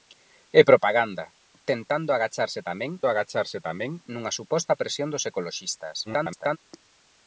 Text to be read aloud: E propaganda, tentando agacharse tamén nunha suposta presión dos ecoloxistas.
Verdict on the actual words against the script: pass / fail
fail